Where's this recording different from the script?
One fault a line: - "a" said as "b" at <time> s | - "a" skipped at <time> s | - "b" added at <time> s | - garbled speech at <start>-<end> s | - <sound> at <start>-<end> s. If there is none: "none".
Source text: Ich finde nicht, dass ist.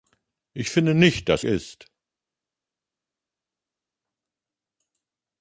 none